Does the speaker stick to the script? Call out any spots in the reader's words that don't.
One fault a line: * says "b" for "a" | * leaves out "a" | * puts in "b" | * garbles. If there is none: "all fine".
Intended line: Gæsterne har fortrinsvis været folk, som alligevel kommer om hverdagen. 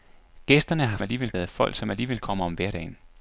* says "alligevel" for "fortrinsvis"